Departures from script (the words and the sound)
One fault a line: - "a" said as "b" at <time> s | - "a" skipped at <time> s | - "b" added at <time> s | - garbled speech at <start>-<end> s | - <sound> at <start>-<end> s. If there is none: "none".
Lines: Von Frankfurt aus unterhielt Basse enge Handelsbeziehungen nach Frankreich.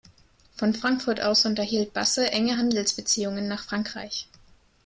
none